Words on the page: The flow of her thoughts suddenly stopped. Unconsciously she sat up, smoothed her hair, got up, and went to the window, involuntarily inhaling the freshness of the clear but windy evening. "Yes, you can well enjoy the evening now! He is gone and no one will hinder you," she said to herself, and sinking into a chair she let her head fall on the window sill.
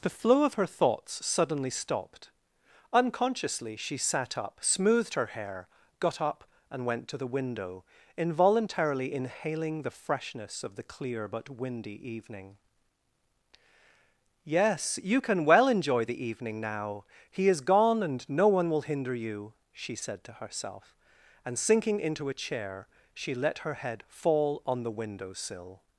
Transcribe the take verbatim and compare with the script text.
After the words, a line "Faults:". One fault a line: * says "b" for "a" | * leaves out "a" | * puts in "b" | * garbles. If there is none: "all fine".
The flow of her thoughts suddenly stopped. Unconsciously she sat up, smoothed her hair, got up, and went to the window, involuntarily inhaling the freshness of the clear but windy evening. "Yes, you can well enjoy the evening now! He is gone and no one will hinder you," she said to herself, and sinking into a chair she let her head fall on the window sill.
Faults:
all fine